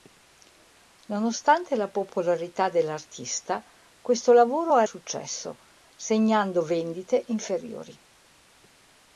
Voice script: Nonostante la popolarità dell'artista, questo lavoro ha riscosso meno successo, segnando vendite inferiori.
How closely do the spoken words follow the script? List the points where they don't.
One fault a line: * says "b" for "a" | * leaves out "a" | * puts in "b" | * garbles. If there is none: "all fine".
* leaves out "riscosso meno"